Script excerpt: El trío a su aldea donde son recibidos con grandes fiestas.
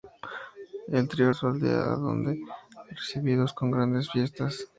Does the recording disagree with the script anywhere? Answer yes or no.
no